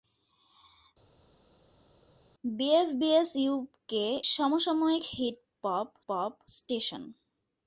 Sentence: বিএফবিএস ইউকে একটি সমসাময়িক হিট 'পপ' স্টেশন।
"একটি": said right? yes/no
no